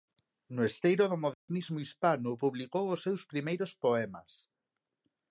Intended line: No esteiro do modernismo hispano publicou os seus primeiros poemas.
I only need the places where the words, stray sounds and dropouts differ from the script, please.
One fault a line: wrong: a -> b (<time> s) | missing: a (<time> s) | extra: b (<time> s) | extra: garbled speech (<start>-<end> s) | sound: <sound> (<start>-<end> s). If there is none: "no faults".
sound: dropout (1.3-1.5 s)